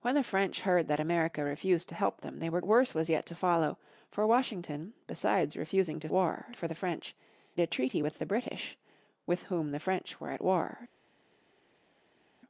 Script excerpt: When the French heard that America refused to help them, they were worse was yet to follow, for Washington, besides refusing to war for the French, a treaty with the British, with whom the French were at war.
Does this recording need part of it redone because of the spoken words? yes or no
no